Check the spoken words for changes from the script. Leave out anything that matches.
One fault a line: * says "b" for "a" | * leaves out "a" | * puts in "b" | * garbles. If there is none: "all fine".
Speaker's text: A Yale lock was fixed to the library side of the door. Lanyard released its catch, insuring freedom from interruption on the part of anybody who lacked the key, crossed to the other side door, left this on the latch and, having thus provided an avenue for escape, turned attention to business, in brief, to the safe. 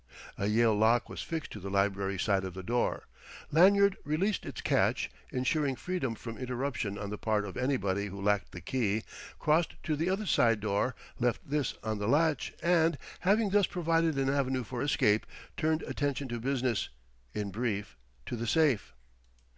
all fine